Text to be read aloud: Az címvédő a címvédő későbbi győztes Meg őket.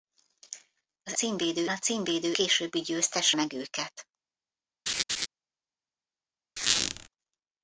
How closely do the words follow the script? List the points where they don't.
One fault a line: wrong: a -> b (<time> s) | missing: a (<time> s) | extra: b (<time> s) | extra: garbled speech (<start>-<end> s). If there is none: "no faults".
no faults